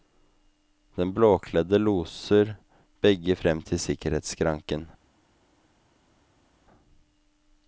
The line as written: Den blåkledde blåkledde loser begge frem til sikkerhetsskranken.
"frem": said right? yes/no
yes